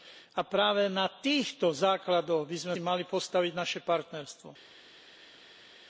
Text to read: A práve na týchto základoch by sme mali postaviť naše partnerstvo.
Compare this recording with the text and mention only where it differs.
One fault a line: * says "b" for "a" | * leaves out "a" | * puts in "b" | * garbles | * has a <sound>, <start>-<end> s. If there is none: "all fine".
all fine